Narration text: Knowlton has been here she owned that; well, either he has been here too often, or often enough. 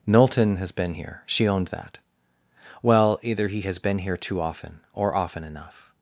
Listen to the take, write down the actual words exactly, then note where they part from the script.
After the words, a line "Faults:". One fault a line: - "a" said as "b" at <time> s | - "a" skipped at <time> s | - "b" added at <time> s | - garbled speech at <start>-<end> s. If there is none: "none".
Knowlton has been here she owned that; well, either he has been here too often, or often enough.
Faults:
none